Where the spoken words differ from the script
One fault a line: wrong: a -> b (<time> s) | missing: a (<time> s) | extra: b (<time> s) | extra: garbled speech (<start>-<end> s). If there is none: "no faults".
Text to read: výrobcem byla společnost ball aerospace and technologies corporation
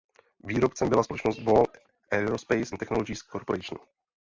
no faults